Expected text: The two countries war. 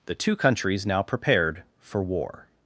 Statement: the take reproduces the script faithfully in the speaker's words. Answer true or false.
false